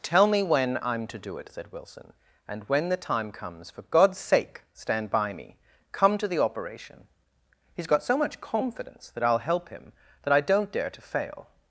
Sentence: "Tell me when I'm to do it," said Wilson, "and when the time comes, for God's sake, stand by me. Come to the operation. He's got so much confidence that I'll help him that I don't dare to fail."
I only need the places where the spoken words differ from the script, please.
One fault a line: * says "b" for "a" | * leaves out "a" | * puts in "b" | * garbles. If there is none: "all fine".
all fine